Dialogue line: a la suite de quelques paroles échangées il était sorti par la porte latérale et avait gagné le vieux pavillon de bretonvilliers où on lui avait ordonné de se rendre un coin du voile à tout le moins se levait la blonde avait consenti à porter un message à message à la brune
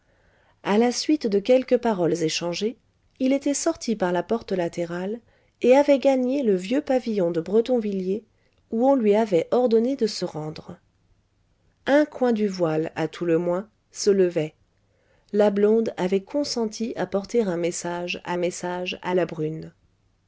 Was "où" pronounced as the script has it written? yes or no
yes